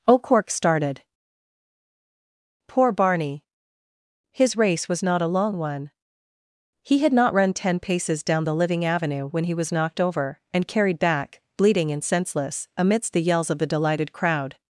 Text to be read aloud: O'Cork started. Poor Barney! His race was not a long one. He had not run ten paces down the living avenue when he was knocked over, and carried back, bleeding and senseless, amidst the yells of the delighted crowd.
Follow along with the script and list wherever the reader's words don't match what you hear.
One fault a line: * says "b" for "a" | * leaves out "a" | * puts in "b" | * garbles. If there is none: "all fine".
all fine